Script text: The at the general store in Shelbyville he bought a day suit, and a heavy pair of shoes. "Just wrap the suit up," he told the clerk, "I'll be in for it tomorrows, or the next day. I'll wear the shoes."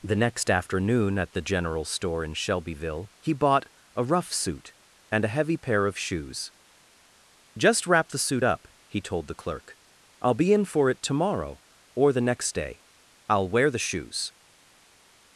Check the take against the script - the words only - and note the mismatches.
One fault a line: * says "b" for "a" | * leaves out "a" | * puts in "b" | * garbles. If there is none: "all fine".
* puts in "next afternoon"
* says "rough" for "day"
* says "tomorrow" for "tomorrows"